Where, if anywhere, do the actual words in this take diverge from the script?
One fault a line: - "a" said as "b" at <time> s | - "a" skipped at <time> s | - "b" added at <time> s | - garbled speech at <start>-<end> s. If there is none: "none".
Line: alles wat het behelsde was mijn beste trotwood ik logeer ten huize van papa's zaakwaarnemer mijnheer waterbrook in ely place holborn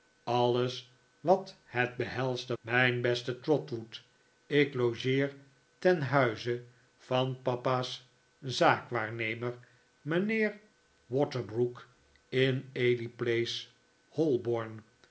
- "was" skipped at 2.6 s